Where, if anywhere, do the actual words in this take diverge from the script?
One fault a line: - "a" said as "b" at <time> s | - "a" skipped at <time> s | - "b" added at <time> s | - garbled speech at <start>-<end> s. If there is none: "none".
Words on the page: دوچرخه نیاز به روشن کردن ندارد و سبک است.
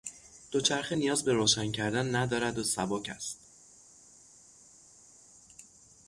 none